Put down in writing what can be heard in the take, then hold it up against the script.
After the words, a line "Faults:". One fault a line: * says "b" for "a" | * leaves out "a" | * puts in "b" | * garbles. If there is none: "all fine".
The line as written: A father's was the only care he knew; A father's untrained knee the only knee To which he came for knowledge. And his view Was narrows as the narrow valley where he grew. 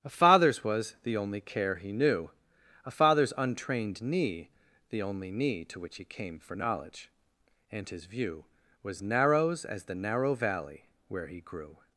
A father's was the only care he knew; A father's untrained knee the only knee To which he came for knowledge. And his view Was narrows as the narrow valley where he grew.
Faults:
all fine